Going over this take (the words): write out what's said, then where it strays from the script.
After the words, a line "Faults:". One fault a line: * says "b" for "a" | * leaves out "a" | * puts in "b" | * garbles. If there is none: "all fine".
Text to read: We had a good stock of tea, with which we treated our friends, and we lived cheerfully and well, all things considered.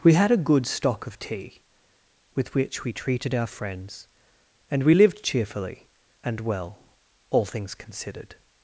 We had a good stock of tea, with which we treated our friends, and we lived cheerfully and well, all things considered.
Faults:
all fine